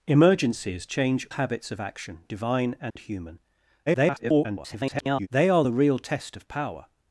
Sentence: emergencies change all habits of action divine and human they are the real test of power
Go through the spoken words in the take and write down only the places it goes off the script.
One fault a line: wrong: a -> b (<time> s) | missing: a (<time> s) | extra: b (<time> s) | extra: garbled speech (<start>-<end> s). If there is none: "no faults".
missing: all (1.3 s)
extra: garbled speech (3.9-5.3 s)